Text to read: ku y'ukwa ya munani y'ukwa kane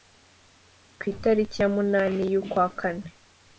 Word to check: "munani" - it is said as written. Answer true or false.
true